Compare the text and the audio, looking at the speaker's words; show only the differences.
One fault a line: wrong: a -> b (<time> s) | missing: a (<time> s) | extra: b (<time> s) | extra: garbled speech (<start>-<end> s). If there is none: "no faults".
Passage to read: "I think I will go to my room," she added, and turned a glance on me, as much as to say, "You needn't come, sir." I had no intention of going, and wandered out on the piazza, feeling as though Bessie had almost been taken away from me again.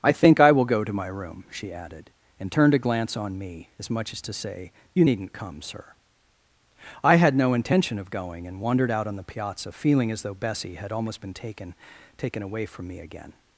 extra: taken (12.2 s)